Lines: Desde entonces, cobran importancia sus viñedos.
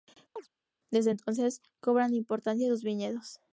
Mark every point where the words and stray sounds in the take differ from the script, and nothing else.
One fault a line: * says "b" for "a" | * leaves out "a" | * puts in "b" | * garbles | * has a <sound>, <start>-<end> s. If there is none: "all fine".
* has a chirp, 0.4-0.5 s